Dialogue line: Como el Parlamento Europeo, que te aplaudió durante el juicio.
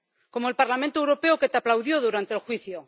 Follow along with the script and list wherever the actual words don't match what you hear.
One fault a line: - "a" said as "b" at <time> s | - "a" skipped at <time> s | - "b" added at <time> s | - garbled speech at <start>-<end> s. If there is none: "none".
none